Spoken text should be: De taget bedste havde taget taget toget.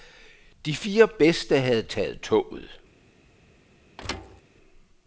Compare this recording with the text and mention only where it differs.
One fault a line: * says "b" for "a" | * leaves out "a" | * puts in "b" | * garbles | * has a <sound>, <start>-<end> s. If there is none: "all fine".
* says "fire" for "taget"
* leaves out "taget"
* has a thud, 4.0-4.4 s